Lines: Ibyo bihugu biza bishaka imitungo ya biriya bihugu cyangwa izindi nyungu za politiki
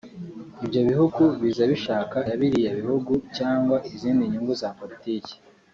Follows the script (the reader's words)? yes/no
no